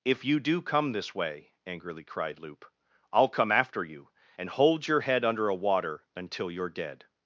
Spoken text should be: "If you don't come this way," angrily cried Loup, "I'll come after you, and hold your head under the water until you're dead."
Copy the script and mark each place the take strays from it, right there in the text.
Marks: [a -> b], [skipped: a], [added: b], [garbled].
"If you [don't -> do] come this way," angrily cried Loup, "I'll come after you, and hold your head under [the -> a] water until you're dead."